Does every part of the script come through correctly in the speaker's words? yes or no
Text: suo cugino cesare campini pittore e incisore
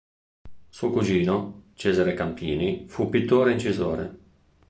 no